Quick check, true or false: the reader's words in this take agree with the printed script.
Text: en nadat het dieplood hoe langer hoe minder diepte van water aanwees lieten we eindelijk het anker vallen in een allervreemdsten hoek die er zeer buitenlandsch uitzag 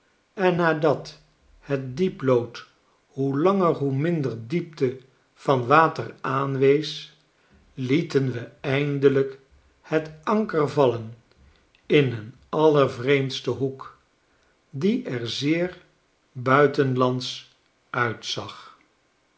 true